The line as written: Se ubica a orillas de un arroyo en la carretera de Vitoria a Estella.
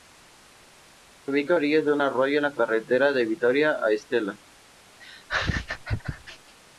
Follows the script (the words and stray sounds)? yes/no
no